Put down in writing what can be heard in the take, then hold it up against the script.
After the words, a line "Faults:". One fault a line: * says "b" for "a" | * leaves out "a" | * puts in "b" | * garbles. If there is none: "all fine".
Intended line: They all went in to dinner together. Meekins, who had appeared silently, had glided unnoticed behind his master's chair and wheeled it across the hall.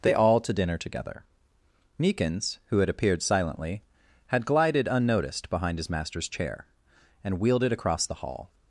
They all to dinner together. Meekins, who had appeared silently, had glided unnoticed behind his master's chair and wheeled it across the hall.
Faults:
* leaves out "went in"